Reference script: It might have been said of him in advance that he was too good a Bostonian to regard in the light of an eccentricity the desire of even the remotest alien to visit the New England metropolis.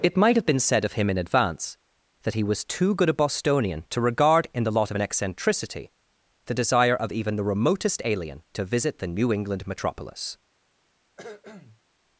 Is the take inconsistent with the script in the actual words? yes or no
yes